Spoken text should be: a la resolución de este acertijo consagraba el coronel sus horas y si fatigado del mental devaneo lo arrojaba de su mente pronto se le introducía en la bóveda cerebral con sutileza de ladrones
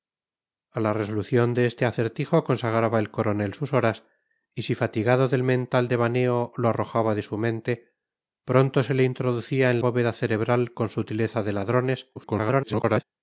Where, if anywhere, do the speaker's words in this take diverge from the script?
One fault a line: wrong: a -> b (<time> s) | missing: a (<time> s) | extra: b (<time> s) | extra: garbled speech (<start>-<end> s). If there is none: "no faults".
missing: la (9.8 s)
extra: garbled speech (12.1-13.0 s)